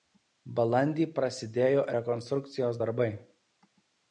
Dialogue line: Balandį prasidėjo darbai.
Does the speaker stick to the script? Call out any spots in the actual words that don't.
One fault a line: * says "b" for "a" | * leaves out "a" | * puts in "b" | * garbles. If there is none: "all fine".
* puts in "rekonstrukcijos"